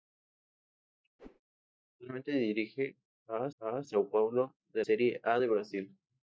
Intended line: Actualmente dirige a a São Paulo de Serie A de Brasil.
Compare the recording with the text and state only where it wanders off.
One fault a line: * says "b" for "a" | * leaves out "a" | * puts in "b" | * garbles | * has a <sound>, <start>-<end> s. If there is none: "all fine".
* has a whoosh, 1.2-1.4 s